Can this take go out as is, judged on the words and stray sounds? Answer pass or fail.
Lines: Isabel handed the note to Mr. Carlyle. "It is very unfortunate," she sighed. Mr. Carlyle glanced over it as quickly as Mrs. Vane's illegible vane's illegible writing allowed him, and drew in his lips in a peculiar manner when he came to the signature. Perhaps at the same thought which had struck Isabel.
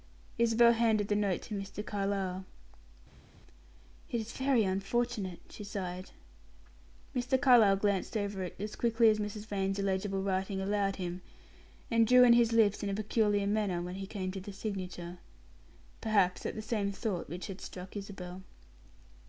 fail